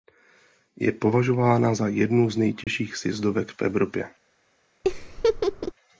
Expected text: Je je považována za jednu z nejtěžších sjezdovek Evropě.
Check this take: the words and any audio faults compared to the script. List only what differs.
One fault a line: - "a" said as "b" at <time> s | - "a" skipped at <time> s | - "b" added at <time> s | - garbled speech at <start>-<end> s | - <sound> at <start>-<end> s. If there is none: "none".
- "je" skipped at 0.9 s
- dropout at 2.6-2.7 s
- "v" added at 3.5 s
- laugh at 4.8-5.7 s